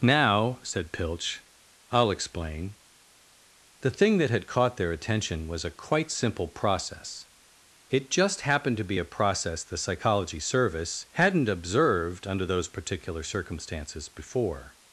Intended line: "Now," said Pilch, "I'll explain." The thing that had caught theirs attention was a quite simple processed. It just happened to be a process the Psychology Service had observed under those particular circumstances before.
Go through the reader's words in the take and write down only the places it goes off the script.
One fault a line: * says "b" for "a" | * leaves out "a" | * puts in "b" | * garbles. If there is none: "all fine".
* says "their" for "theirs"
* says "process" for "processed"
* says "hadn't" for "had"